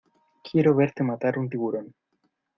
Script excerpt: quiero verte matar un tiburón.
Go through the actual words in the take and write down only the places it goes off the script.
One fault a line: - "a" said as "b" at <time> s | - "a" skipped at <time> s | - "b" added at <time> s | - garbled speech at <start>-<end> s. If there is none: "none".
none